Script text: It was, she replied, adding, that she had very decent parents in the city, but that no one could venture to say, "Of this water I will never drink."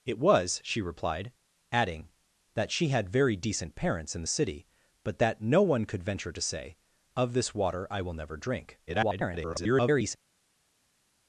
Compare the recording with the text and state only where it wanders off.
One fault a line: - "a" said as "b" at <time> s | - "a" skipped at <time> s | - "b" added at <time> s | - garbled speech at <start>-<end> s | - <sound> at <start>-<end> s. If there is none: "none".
- garbled speech at 8.9-10.2 s